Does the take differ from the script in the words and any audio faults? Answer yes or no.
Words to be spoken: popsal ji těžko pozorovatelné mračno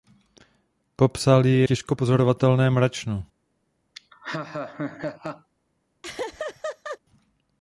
yes